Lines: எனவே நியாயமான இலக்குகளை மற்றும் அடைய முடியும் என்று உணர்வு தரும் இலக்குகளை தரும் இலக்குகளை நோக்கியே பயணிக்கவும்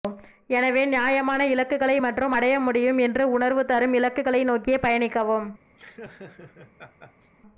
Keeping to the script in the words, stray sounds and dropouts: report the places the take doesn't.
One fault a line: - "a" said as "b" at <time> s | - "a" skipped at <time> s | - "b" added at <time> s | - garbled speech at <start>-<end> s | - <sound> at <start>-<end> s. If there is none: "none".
- "தரும் இலக்குகளை" skipped at 4.4 s
- laugh at 5.8-7.3 s